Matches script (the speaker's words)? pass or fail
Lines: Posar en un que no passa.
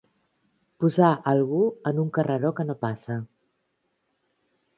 fail